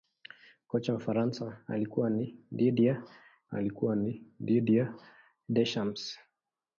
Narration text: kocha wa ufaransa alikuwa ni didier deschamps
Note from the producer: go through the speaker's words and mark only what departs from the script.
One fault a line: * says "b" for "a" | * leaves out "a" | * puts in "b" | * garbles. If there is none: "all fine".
* puts in "alikuwa ni didier"